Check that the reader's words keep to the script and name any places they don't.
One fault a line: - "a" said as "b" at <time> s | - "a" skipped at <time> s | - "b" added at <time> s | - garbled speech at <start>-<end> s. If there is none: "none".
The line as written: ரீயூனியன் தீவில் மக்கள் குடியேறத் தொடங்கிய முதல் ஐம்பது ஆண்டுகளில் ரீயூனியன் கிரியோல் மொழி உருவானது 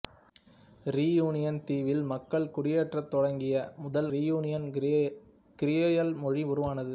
- "ஐம்பது ஆண்டுகளில்" skipped at 4.1 s